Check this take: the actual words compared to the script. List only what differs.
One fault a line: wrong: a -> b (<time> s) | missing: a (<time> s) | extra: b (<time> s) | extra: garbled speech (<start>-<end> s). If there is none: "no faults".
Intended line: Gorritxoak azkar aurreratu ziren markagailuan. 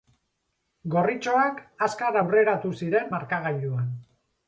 no faults